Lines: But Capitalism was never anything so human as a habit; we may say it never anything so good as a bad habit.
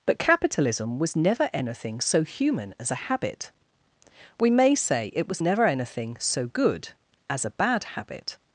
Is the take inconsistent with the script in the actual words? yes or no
yes